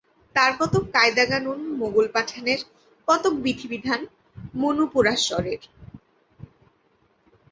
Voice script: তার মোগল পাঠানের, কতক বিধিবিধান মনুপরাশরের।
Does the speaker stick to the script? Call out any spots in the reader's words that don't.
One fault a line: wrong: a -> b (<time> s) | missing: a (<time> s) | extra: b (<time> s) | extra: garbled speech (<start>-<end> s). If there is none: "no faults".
extra: কতক কায়দা-কানুন (0.6 s)